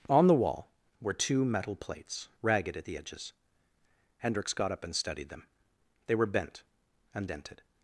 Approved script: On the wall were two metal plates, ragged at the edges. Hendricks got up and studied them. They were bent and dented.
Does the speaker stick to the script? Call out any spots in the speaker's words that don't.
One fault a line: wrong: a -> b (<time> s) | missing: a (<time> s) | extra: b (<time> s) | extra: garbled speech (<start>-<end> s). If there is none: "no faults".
no faults